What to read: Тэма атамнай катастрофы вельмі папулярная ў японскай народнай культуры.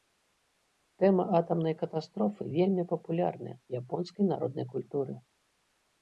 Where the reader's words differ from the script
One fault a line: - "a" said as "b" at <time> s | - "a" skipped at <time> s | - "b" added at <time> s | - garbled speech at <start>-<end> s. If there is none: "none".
none